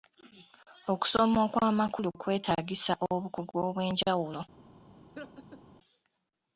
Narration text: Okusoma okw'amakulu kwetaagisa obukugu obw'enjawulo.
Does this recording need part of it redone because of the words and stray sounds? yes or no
yes